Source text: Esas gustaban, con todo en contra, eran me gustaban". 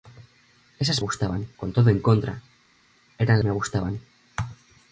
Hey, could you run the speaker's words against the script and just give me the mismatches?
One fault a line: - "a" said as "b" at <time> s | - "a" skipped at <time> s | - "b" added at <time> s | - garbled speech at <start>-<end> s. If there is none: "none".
none